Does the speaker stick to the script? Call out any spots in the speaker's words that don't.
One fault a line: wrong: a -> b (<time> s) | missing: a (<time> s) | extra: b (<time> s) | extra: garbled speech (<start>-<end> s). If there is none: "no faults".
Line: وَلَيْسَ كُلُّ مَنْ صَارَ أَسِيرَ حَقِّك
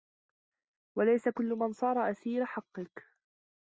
no faults